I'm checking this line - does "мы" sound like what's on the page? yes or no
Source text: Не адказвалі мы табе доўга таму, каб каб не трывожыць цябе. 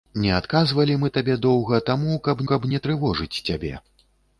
yes